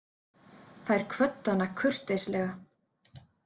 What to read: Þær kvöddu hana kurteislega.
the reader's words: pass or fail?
pass